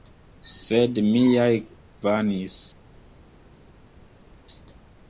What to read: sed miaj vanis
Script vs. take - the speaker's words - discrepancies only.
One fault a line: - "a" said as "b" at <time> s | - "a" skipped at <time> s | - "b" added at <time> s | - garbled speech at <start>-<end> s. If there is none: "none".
none